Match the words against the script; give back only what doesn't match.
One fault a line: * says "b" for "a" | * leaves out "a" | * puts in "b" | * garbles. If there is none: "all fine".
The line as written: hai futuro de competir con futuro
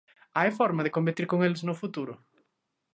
* says "forma" for "futuro"
* puts in "eles no"